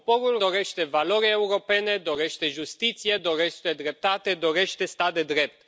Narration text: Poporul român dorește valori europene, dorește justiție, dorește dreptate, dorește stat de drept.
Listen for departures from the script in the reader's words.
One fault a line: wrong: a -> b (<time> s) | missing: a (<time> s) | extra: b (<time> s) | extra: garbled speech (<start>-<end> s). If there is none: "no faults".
missing: român (0.4 s)